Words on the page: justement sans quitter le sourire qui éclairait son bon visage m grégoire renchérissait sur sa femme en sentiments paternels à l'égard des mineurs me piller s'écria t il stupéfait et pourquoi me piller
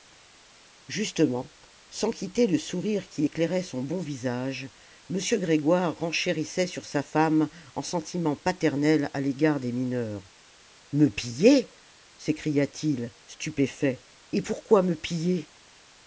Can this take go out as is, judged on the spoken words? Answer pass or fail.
pass